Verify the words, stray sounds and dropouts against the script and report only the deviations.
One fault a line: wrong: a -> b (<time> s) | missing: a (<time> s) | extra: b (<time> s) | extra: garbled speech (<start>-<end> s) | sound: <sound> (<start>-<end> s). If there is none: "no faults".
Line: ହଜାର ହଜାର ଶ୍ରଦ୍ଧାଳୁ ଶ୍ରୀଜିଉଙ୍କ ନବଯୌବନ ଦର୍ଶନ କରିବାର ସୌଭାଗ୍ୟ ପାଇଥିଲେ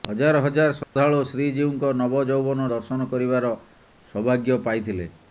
sound: dropout (0.8-1.0 s)